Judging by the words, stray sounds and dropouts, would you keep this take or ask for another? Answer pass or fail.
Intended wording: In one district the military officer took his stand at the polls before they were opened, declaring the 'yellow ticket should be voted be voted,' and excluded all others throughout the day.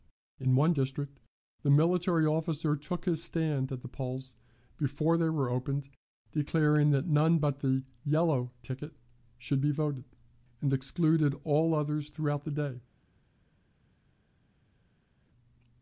fail